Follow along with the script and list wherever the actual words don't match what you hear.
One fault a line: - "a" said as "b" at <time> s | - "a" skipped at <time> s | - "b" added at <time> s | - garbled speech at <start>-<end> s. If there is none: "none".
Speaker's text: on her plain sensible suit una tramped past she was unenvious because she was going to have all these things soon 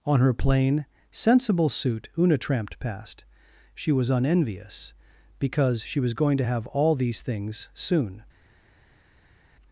none